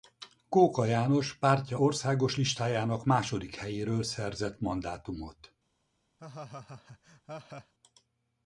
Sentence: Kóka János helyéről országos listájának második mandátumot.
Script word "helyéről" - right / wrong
wrong